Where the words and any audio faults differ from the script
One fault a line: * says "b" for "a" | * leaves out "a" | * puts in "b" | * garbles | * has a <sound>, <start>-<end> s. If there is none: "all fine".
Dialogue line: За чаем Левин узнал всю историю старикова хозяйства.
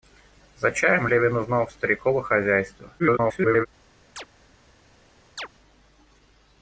* leaves out "всю историю"
* garbles
* has a chirp, 4.2-4.3 s
* has a chirp, 5.4-5.5 s